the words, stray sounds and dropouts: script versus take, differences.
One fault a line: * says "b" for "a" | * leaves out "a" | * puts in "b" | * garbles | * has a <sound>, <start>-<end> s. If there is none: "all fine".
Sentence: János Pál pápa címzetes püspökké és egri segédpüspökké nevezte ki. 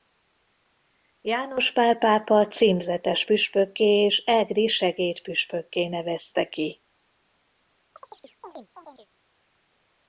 * has a chirp, 8.0-9.1 s